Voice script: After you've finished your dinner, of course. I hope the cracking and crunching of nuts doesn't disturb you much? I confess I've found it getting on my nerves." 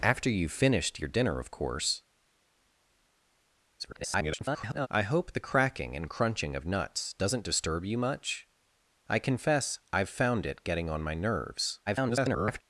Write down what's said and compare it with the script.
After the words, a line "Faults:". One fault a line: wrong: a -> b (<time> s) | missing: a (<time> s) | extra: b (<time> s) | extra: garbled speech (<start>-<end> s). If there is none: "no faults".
After you've finished your dinner, of course. [garbled] I hope the cracking and crunching of nuts doesn't disturb you much? I confess I've found it getting on my nerves." [garbled]
Faults:
extra: garbled speech (3.8-4.9 s)
extra: garbled speech (11.9-12.6 s)